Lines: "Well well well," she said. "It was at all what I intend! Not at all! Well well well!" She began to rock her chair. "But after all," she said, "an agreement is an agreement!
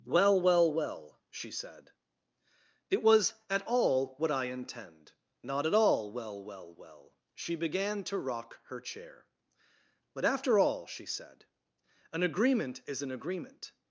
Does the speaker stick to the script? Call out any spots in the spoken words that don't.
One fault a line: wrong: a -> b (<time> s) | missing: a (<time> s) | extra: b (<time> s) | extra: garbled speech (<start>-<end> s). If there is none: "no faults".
no faults